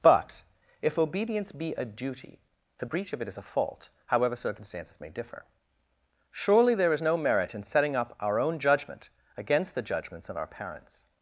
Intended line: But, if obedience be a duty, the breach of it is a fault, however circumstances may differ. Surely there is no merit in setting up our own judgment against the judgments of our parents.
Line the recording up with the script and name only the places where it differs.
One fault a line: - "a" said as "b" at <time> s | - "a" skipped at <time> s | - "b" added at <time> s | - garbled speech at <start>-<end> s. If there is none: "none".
none